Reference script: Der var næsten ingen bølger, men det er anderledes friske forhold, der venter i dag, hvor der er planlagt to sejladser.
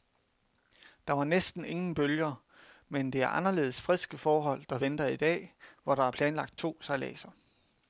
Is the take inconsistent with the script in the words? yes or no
no